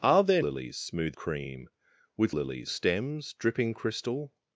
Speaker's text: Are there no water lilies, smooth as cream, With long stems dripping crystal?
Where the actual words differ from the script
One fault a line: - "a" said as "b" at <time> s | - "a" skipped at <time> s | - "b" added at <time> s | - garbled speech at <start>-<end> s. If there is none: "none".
- "no water" skipped at 0.4 s
- "as" skipped at 1.2 s
- "long" said as "lilies" at 2.3 s